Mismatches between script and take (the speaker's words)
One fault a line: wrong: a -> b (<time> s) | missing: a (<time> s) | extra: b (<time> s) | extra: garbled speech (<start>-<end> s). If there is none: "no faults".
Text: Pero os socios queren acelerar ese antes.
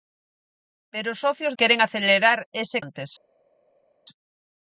no faults